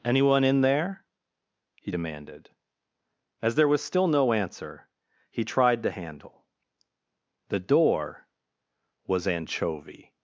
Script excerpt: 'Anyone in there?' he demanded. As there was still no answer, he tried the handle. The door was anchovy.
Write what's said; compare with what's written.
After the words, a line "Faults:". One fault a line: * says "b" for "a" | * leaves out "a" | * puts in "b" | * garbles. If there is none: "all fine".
'Anyone in there?' he demanded. As there was still no answer, he tried the handle. The door was anchovy.
Faults:
all fine